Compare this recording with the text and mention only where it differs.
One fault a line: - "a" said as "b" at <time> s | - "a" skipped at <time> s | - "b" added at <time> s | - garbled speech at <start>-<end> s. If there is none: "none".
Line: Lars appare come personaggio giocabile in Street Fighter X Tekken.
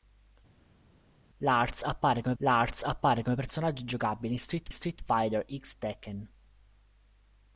- "lars appare come" added at 2.4 s
- "Street" added at 4.7 s